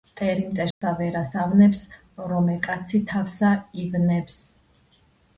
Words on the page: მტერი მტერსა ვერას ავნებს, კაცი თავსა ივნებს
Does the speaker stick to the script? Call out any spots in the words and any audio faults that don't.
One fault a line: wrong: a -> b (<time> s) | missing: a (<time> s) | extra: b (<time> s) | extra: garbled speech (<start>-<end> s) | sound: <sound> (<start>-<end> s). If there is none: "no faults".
sound: dropout (0.7-0.8 s)
extra: რომე (2.3 s)